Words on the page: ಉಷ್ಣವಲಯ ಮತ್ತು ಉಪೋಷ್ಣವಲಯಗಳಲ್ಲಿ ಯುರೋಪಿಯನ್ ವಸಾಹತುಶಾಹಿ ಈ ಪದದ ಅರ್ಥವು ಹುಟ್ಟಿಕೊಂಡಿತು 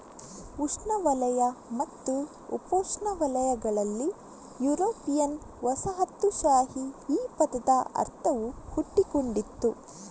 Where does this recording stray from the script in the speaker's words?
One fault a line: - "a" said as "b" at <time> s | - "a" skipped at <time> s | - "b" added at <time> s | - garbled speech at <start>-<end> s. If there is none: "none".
none